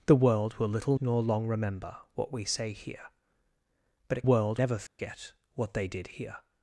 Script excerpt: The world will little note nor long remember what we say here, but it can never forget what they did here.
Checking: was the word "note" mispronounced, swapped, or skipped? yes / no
yes